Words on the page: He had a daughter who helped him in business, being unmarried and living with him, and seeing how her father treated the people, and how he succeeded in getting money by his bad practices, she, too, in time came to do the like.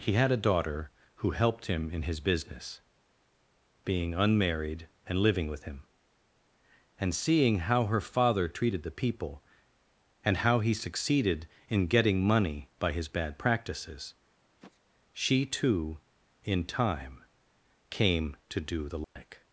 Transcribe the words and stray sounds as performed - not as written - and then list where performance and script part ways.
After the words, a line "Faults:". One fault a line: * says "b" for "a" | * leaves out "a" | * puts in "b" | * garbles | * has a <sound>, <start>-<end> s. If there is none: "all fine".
He had a daughter who helped him in his business, being unmarried and living with him, and seeing how her father treated the people, and how he succeeded in getting money by his bad practices, she, too, in time came to do the like.
Faults:
* puts in "his"
* has a sniff, 14.4-14.8 s
* has a dropout, 19.0-19.2 s